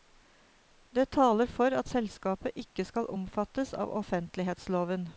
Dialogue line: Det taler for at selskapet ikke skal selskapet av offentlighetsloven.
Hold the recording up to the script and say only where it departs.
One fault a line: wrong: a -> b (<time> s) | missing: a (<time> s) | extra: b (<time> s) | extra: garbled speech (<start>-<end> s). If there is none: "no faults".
wrong: selskapet -> omfattes (3.2 s)